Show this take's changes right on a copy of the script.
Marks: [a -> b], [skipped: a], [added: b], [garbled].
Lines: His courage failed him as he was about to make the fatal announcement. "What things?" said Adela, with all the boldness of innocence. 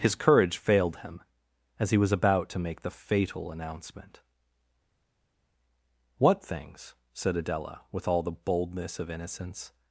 His courage failed him as he was about to make the fatal announcement. "What things?" said Adela, with all the boldness of innocence.